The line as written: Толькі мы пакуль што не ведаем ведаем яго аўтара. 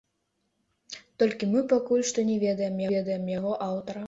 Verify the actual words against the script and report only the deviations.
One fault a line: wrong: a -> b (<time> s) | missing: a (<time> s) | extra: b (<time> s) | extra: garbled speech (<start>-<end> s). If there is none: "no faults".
no faults